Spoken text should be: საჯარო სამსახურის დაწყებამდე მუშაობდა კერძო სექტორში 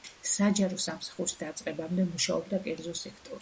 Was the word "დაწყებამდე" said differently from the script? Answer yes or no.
no